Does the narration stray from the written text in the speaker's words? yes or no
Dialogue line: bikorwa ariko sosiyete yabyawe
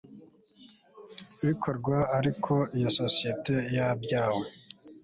yes